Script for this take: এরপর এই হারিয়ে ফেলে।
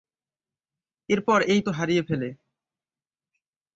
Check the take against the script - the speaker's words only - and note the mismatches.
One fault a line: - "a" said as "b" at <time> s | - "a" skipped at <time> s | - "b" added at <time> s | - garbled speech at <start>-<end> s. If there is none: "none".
none